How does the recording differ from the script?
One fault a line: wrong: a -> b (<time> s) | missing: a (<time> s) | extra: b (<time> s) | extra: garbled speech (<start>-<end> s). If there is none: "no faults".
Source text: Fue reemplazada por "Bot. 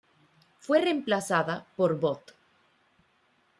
no faults